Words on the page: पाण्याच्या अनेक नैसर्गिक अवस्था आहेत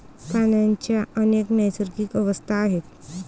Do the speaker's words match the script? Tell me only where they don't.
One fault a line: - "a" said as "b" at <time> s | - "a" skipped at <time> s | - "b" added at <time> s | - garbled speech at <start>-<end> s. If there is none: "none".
none